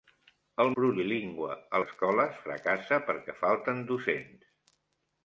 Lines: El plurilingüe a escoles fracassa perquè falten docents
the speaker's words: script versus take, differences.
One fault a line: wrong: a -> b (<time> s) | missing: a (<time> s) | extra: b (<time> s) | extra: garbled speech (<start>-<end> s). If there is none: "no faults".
no faults